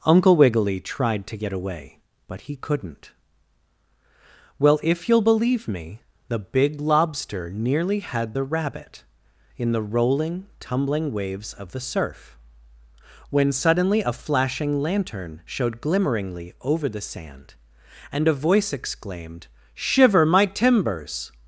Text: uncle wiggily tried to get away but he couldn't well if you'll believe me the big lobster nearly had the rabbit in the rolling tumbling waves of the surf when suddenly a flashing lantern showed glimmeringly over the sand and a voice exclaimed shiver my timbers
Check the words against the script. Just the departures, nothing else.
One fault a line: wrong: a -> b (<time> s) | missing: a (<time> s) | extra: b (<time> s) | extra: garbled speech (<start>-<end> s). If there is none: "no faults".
no faults